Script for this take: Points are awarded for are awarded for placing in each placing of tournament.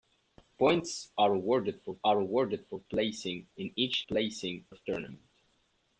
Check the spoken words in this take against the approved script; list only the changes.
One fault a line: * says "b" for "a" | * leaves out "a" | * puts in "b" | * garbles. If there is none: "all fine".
all fine